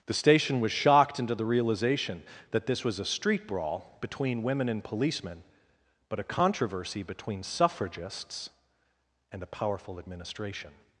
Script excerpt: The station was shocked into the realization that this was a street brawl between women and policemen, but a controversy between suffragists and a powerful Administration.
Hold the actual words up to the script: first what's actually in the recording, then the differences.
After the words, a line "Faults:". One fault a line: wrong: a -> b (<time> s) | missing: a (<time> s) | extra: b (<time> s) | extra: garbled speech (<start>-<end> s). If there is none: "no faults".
The station was shocked into the realization that this was a street brawl between women and policemen, but a controversy between suffragists and a powerful Administration.
Faults:
no faults